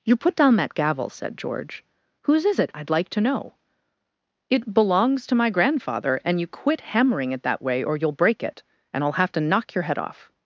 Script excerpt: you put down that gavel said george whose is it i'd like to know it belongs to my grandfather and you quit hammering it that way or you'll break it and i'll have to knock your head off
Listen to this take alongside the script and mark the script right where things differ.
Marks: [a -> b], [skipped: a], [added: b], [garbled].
you put down that gavel said george whose is it i'd like to know it belongs to my grandfather and you quit hammering it that way or you'll break it and i'll have to knock your head off